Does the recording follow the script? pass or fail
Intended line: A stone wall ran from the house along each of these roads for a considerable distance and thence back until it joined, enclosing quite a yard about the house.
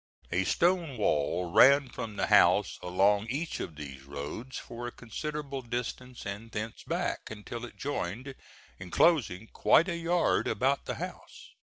pass